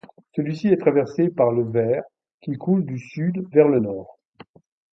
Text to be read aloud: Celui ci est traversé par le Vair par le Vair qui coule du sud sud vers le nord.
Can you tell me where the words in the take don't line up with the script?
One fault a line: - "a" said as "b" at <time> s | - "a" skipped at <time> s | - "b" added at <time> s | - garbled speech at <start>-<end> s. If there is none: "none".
- "par le Vair" skipped at 2.0 s
- "sud" skipped at 3.4 s